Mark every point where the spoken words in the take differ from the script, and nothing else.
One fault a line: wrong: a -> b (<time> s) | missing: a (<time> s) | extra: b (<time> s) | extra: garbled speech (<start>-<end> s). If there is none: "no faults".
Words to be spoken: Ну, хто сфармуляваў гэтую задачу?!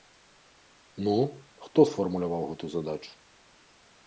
no faults